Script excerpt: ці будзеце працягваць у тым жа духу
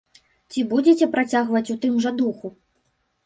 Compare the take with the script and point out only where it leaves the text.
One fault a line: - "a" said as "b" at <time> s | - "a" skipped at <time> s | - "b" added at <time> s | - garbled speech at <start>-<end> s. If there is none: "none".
none